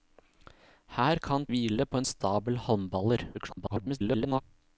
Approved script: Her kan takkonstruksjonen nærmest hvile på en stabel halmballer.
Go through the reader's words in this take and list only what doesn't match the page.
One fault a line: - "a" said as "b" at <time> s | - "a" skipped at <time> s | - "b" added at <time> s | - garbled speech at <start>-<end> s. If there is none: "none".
- "takkonstruksjonen nærmest" skipped at 1.4 s
- garbled speech at 3.3-4.4 s